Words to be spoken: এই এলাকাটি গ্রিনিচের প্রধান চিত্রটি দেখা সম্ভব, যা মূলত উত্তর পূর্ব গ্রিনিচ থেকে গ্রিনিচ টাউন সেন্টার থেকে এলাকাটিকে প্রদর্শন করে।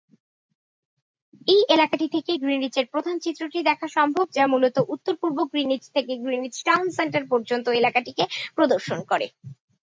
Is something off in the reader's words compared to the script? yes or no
yes